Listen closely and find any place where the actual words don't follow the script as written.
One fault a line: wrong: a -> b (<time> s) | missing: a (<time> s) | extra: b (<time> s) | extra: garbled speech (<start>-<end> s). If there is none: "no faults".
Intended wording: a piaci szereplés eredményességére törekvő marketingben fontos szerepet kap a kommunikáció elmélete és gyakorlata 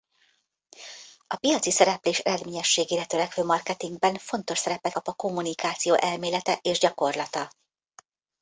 no faults